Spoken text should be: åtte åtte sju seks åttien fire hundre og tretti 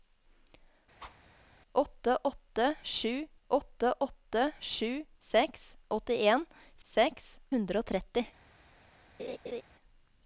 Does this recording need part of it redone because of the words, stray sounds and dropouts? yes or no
yes